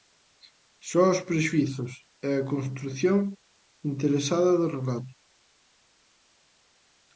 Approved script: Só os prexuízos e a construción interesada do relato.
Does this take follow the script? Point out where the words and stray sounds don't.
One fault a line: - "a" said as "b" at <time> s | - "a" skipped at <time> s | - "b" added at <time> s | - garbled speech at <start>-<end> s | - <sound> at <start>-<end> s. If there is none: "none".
none